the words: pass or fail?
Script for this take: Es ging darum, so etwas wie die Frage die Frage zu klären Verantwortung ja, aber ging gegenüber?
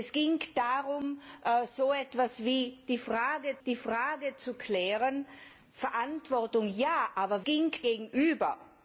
pass